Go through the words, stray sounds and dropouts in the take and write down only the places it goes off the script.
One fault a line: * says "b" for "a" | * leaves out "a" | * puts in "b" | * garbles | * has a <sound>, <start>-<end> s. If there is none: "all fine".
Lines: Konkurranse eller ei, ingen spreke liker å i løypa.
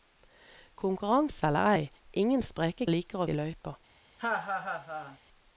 * has a laugh, 4.2-5.2 s